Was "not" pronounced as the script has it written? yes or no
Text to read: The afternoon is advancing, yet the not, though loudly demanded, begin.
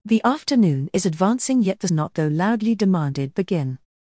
yes